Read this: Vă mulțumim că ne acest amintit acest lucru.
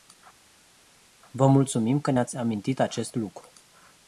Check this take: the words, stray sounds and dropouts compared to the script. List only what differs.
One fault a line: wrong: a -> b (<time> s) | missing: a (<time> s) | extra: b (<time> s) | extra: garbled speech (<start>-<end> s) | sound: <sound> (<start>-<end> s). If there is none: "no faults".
wrong: acest -> ați (2.2 s)